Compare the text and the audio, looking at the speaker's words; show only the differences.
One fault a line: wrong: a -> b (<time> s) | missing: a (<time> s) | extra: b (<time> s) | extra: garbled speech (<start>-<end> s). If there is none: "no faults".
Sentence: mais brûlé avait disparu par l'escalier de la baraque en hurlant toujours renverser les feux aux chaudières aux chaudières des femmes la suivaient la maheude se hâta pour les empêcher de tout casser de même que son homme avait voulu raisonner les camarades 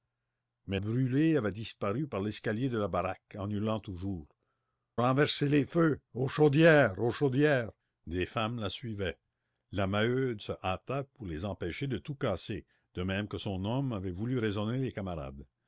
no faults